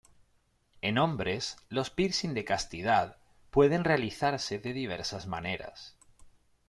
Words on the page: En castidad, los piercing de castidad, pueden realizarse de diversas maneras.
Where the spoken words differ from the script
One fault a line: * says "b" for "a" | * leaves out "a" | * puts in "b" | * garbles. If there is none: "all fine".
* says "hombres" for "castidad"